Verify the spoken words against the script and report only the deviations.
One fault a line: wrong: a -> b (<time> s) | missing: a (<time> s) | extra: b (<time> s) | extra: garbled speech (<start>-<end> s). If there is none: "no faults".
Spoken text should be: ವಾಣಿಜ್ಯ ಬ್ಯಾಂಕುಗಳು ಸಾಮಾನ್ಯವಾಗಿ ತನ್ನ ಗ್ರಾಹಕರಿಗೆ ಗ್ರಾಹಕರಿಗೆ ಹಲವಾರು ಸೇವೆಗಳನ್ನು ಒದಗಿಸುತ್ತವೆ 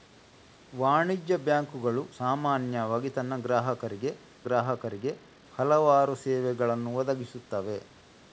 no faults